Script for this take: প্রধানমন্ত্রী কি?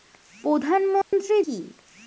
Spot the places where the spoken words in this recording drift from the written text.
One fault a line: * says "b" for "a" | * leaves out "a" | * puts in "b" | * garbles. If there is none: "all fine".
all fine